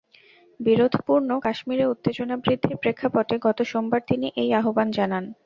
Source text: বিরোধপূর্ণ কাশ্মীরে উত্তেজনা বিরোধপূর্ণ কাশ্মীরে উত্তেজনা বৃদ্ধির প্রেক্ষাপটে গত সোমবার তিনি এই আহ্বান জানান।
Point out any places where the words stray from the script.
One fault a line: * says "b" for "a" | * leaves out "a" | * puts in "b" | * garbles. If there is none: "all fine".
* leaves out "বিরোধপূর্ণ কাশ্মীরে উত্তেজনা"